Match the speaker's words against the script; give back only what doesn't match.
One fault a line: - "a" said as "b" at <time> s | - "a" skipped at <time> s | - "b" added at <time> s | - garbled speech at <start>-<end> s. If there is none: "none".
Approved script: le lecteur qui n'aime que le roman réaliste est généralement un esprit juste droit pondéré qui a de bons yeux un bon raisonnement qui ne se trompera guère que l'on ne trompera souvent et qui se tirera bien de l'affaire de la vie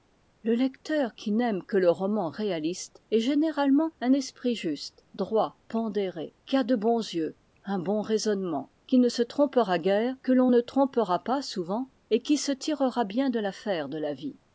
- "pas" added at 11.2 s